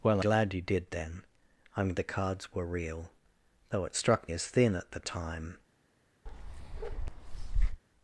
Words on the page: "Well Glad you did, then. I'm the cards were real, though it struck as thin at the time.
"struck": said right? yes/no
yes